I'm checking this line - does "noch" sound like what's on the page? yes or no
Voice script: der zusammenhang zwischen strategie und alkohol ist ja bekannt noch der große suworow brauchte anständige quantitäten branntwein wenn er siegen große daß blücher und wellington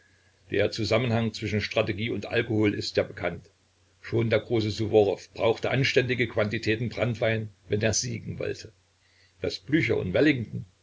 no